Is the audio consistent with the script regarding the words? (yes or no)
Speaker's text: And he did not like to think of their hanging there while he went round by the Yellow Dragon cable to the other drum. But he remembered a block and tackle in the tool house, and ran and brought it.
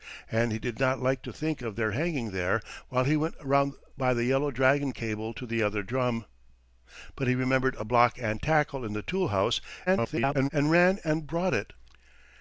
no